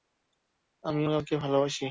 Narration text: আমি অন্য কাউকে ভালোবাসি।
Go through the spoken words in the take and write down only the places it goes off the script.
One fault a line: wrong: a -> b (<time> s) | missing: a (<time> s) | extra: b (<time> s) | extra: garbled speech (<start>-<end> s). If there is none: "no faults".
missing: অন্য (1.0 s)